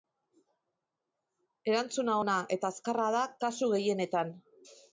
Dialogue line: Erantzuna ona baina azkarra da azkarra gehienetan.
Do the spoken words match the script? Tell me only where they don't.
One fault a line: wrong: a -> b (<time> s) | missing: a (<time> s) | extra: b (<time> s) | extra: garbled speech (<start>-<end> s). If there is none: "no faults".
wrong: baina -> eta (2.6 s)
wrong: azkarra -> kasu (3.5 s)